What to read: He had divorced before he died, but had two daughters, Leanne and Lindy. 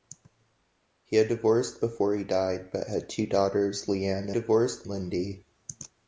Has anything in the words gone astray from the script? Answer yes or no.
yes